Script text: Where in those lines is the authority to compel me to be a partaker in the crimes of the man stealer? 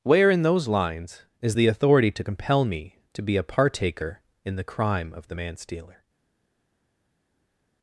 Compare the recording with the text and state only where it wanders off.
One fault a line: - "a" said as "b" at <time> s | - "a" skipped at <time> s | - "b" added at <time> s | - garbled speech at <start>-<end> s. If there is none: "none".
- "crimes" said as "crime" at 4.6 s